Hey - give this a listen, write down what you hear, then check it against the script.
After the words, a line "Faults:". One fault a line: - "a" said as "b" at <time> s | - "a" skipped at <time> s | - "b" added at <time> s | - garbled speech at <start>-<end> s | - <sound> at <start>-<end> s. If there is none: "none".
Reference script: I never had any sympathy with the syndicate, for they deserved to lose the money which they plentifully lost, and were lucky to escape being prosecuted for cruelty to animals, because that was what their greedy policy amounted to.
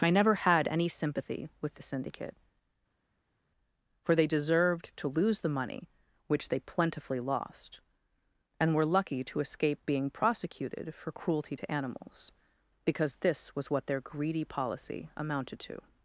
I never had any sympathy with the syndicate, for they deserved to lose the money which they plentifully lost, and were lucky to escape being prosecuted for cruelty to animals, because this was what their greedy policy amounted to.
Faults:
- "that" said as "this" at 13.2 s